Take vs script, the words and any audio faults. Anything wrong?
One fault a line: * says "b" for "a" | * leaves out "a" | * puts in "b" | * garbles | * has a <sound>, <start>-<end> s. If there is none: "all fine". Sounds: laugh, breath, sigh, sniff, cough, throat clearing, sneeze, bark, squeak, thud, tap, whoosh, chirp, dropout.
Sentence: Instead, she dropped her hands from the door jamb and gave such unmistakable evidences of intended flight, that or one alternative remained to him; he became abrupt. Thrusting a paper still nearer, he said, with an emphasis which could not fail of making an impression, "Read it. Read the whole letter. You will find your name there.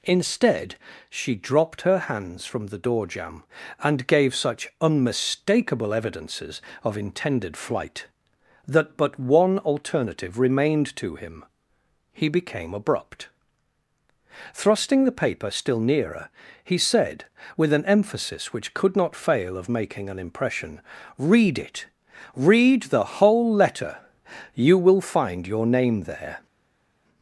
* says "but" for "or"
* says "the" for "a"